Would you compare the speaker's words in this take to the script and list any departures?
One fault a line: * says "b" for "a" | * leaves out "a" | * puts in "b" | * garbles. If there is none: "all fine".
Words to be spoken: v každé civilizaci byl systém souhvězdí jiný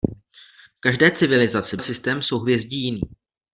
* leaves out "byl"